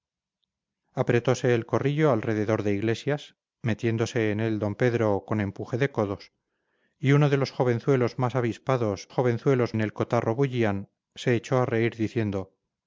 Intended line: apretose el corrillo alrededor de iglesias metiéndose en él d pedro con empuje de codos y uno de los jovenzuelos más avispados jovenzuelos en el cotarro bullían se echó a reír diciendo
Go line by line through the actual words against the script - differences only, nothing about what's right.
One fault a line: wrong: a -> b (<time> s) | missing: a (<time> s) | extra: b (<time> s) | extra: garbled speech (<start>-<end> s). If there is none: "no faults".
no faults